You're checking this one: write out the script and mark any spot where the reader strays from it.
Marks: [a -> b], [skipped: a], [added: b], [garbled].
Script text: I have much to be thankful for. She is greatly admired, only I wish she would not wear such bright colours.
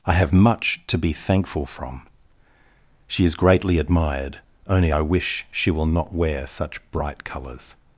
I have much to be thankful [for. -> from] She is greatly admired, only I wish she [would -> will] not wear such bright colours.